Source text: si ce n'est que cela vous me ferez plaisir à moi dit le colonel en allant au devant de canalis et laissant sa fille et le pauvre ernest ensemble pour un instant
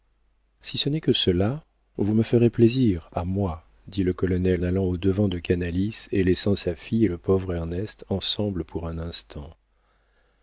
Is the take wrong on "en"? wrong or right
wrong